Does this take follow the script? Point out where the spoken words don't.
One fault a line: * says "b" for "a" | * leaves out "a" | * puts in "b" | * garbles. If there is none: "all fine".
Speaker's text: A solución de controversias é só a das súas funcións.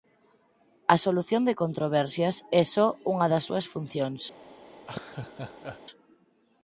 * says "unha" for "a"